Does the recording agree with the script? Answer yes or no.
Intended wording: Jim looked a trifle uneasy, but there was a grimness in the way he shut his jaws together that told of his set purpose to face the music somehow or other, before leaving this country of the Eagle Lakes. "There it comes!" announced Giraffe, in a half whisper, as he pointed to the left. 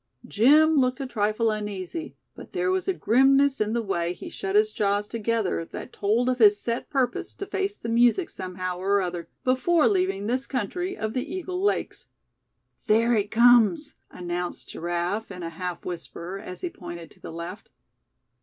yes